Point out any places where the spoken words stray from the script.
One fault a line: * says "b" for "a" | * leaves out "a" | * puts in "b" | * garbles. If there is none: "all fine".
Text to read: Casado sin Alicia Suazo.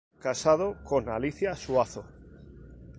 * says "con" for "sin"